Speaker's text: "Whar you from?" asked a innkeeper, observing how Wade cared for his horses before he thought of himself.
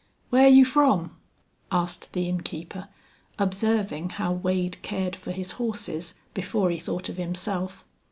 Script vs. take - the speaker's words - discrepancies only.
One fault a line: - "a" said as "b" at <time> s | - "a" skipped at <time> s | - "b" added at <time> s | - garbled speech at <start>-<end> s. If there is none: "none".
- "a" said as "the" at 2.1 s